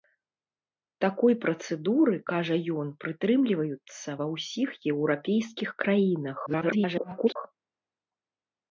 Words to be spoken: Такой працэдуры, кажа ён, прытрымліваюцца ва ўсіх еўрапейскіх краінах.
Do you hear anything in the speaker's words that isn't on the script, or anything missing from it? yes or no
yes